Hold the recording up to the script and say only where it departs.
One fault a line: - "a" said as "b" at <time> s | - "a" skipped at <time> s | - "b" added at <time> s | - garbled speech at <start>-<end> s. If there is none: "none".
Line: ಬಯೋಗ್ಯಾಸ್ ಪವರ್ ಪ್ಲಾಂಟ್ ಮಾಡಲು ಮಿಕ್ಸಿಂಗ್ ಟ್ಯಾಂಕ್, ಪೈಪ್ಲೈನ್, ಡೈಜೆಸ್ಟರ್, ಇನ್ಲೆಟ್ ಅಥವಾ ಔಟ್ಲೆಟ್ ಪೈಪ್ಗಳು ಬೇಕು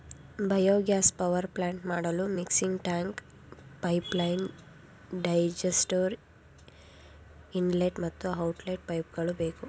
- "ಅಥವಾ" said as "ಮತ್ತು" at 8.0 s